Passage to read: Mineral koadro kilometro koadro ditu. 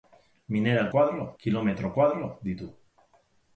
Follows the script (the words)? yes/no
yes